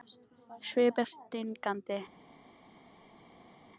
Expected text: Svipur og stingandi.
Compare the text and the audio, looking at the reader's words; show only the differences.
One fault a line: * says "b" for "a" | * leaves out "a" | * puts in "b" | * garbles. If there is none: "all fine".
all fine